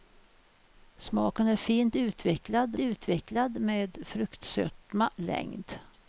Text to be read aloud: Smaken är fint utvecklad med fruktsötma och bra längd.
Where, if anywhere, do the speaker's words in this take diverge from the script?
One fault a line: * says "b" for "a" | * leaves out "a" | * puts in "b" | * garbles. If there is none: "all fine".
* puts in "utvecklad"
* leaves out "och bra"